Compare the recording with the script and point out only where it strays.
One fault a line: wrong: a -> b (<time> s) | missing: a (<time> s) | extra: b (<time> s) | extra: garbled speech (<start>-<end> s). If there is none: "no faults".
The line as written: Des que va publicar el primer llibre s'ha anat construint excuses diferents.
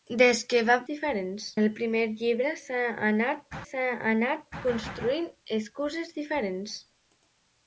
wrong: publicar -> diferents (0.9 s)
extra: s'ha anat (3.6 s)